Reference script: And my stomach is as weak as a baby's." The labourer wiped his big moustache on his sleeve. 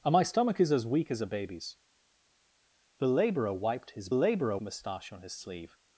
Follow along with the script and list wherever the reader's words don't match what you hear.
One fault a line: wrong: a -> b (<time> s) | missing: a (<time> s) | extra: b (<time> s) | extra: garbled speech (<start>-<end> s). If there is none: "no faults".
wrong: big -> labourer (4.1 s)